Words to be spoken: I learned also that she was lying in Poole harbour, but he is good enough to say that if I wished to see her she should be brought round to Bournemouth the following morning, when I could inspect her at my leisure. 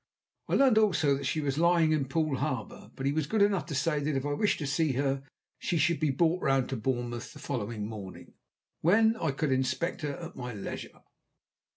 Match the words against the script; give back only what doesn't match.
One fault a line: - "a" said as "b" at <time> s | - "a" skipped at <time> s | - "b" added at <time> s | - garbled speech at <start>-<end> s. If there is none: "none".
- "is" said as "was" at 3.1 s